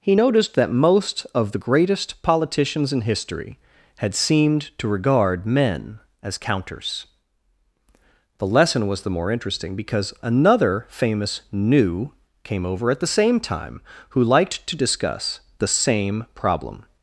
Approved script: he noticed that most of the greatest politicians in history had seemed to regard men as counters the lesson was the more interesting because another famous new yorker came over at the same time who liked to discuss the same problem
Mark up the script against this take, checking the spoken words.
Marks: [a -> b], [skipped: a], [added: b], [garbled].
he noticed that most of the greatest politicians in history had seemed to regard men as counters the lesson was the more interesting because another famous new [skipped: yorker] came over at the same time who liked to discuss the same problem